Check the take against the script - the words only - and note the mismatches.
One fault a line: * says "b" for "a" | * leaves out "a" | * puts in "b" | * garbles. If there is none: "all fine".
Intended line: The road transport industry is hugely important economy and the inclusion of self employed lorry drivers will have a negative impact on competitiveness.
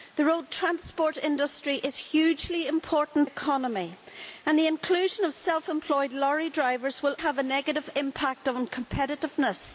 all fine